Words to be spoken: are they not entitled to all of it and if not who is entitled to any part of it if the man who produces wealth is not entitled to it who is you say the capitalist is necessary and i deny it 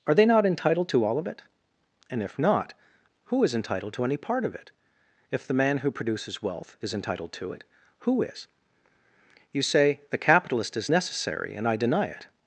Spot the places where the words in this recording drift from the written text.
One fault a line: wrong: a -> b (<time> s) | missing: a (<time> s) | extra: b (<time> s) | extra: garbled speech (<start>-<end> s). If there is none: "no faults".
missing: not (6.9 s)